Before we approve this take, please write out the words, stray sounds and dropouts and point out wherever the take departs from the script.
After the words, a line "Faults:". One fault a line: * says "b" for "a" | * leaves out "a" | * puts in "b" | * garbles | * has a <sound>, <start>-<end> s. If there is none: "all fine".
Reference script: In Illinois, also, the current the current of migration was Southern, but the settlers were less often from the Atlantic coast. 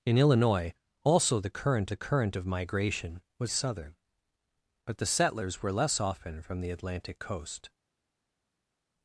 In Illinois, also, the current the current of migration was Southern, but the settlers were less often from the Atlantic coast.
Faults:
all fine